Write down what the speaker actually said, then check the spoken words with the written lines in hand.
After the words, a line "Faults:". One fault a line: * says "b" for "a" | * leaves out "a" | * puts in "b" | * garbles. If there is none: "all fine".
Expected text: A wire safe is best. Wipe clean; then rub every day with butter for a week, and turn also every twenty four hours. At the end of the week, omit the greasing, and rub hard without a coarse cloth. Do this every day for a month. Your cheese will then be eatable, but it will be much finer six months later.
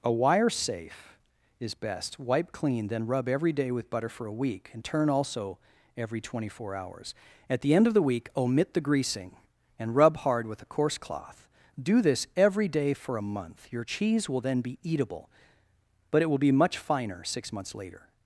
A wire safe is best. Wipe clean; then rub every day with butter for a week, and turn also every twenty four hours. At the end of the week, omit the greasing, and rub hard with a coarse cloth. Do this every day for a month. Your cheese will then be eatable, but it will be much finer six months later.
Faults:
* says "with" for "without"